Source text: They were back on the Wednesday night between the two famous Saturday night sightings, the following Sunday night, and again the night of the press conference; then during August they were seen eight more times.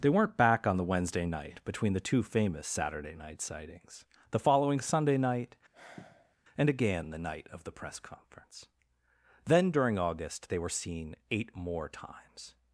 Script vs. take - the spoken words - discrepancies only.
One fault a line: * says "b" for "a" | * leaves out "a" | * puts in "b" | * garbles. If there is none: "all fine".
* says "weren't" for "were"